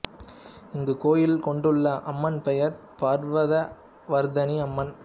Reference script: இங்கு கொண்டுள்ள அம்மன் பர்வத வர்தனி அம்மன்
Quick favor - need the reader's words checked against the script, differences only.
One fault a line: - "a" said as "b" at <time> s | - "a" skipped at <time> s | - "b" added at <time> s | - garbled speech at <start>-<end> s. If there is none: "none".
- "கோயில்" added at 1.0 s
- "பெயர்" added at 2.4 s